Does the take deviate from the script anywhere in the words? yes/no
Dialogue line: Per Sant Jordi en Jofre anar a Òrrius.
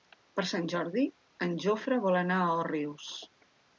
yes